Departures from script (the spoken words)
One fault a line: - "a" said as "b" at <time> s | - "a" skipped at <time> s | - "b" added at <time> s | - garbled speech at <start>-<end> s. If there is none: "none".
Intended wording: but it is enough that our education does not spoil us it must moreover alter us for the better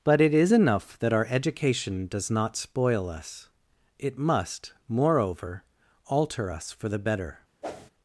none